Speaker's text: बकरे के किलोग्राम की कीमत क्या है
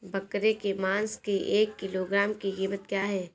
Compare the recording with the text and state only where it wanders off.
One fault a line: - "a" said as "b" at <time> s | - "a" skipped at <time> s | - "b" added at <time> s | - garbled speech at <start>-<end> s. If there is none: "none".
- "मांस की एक" added at 0.8 s